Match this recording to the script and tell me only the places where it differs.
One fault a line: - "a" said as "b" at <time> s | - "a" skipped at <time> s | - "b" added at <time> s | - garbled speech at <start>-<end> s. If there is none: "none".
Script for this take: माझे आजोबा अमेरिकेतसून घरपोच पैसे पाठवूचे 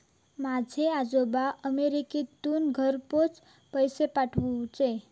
none